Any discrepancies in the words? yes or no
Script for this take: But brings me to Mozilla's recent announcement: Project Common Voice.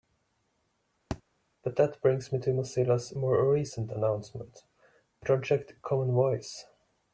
yes